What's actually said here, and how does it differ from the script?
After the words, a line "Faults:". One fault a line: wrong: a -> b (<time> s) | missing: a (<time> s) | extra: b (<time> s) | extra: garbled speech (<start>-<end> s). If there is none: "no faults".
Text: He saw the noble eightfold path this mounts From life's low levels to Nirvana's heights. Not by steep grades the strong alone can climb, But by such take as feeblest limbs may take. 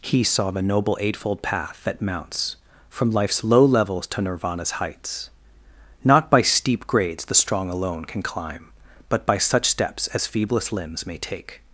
He saw the noble eightfold path that mounts From life's low levels to Nirvana's heights. Not by steep grades the strong alone can climb, But by such steps as feeblest limbs may take.
Faults:
wrong: this -> that (1.8 s)
wrong: take -> steps (9.7 s)